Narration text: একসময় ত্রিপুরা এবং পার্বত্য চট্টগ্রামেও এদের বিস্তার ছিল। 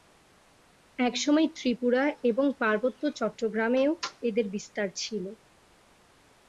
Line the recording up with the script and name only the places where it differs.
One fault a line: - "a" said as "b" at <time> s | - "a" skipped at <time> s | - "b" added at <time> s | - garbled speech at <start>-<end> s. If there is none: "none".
none